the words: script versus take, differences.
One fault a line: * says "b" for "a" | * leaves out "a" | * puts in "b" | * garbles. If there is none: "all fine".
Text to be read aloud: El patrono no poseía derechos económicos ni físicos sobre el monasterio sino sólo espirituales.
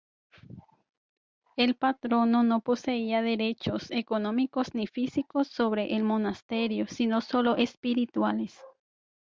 all fine